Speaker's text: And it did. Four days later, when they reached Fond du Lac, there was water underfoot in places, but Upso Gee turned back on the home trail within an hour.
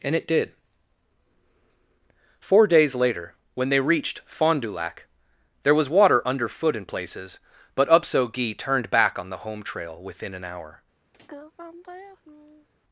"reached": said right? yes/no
yes